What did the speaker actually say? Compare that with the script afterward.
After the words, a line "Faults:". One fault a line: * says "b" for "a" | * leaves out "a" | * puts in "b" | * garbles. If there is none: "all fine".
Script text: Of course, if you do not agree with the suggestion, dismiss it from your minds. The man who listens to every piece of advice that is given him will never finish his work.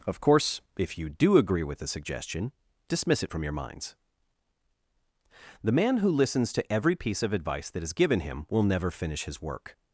Of course, if you do agree with the suggestion, dismiss it from your minds. The man who listens to every piece of advice that is given him will never finish his work.
Faults:
* leaves out "not"